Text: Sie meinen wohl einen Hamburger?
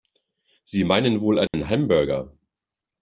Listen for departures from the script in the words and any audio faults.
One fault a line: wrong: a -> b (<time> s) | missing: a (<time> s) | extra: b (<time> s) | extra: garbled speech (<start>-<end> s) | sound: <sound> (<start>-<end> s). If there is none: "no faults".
sound: dropout (1.5-1.5 s)